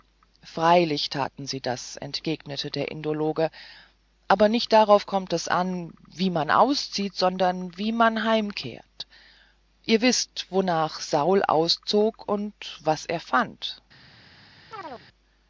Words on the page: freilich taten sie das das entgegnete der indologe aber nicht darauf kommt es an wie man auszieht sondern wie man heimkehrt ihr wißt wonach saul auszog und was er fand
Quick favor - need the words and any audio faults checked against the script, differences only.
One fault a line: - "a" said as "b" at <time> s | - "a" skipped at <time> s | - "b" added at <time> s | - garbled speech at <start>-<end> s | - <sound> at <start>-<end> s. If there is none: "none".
- "das" skipped at 1.9 s
- chirp at 14.7-15.1 s